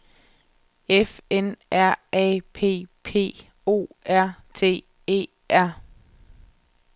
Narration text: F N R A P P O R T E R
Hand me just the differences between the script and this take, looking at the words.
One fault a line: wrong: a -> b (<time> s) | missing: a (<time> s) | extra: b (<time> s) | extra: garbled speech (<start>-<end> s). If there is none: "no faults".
no faults